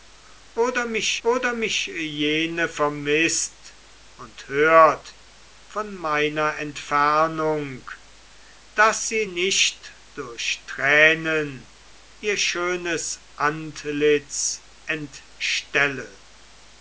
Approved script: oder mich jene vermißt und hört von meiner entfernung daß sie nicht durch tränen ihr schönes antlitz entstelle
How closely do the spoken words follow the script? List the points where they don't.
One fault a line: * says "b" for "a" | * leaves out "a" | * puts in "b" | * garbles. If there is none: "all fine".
* puts in "oder mich"